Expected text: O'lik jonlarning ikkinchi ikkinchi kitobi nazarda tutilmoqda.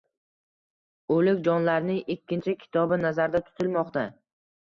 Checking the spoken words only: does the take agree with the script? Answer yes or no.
no